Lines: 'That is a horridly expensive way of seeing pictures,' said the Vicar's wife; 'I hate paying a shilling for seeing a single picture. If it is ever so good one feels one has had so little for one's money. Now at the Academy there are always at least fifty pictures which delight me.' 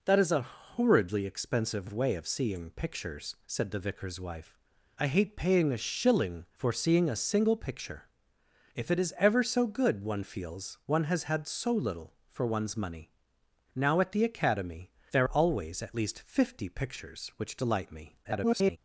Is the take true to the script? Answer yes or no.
no